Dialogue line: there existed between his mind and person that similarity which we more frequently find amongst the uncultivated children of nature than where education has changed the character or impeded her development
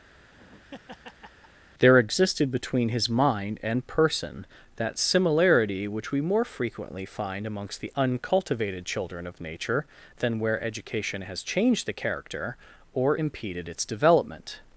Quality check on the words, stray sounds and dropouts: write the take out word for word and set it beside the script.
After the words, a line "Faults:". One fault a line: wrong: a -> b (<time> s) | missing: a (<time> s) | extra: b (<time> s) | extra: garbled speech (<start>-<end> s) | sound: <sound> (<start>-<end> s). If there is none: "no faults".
there existed between his mind and person that similarity which we more frequently find amongst the uncultivated children of nature than where education has changed the character or impeded its development
Faults:
sound: laugh (0.1-1.6 s)
wrong: her -> its (13.7 s)